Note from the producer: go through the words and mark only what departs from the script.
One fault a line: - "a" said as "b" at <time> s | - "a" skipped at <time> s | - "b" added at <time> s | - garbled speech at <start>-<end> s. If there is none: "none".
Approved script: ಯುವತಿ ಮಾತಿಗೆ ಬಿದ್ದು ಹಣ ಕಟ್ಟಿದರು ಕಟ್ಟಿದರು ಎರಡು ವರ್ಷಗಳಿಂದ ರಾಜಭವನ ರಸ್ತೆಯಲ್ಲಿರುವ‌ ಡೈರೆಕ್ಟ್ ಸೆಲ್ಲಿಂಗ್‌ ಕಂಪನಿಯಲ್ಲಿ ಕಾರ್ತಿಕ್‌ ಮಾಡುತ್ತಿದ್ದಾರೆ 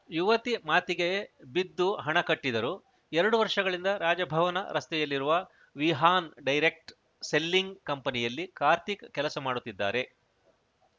- "ಕಟ್ಟಿದರು" skipped at 2.7 s
- "ವಿಹಾನ್" added at 5.8 s
- "ಕೆಲಸ" added at 9.1 s